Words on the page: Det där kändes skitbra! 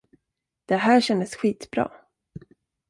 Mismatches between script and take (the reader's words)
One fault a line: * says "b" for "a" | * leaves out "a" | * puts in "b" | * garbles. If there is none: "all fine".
* says "här" for "där"